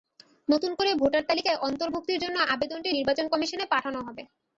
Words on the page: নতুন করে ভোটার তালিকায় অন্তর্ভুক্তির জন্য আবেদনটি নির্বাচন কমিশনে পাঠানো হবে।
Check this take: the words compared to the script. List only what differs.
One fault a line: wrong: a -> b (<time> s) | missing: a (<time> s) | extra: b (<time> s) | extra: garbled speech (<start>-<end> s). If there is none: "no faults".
no faults